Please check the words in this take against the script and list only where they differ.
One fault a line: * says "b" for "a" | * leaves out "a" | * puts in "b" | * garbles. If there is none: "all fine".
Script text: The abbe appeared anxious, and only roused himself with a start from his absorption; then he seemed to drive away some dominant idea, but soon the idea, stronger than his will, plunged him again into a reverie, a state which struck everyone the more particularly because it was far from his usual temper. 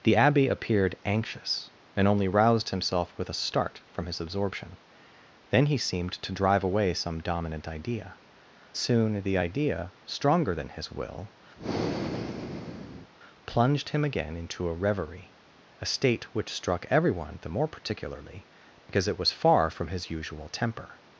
* leaves out "but"